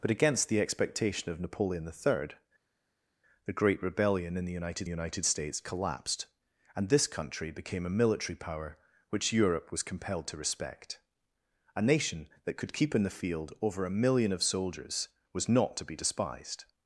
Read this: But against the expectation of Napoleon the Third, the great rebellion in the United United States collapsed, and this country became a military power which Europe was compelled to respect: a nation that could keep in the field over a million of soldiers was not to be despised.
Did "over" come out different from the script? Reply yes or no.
no